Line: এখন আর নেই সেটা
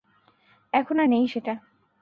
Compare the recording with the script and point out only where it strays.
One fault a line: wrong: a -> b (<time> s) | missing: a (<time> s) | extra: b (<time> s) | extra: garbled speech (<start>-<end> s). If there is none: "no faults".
no faults